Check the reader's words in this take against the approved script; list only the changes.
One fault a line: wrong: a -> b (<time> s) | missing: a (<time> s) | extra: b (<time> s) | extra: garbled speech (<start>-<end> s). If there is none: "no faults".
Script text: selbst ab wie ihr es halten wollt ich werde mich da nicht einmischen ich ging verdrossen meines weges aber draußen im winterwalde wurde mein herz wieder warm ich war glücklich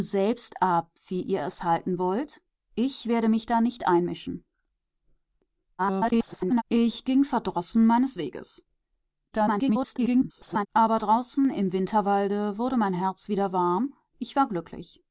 extra: garbled speech (5.8-6.6 s)
extra: garbled speech (9.3-10.7 s)